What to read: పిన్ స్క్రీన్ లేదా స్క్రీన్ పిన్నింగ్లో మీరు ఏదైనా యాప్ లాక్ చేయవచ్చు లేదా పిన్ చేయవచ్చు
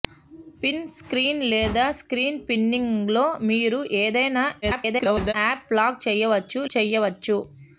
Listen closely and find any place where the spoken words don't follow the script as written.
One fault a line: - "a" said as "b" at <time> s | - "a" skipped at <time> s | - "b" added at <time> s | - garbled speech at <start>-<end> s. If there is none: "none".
- garbled speech at 4.6-5.3 s
- "లేదా పిన్" skipped at 6.6 s